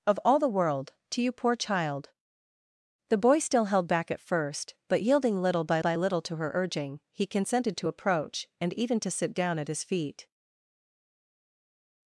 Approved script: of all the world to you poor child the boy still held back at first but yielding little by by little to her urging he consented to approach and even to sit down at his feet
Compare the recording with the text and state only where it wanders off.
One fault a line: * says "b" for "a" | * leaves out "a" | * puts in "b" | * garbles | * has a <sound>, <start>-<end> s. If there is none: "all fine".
all fine